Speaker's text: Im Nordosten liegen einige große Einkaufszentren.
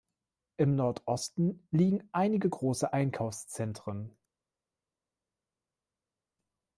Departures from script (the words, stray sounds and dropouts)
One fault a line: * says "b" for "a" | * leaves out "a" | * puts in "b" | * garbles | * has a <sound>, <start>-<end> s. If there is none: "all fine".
all fine